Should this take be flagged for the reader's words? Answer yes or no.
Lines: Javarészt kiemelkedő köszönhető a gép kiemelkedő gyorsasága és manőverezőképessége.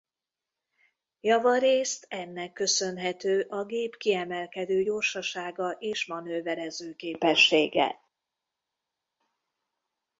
yes